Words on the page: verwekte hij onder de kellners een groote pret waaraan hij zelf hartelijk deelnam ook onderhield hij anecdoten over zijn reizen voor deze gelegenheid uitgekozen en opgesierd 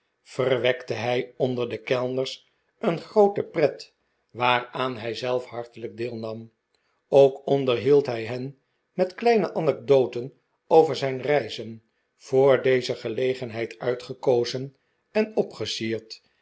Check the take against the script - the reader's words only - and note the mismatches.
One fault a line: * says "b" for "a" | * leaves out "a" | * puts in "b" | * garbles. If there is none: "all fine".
* puts in "hen met kleine"